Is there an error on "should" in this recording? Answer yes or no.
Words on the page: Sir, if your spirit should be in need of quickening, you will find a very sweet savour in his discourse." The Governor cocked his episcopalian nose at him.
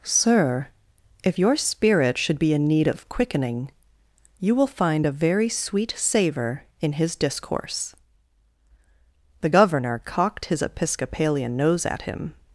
no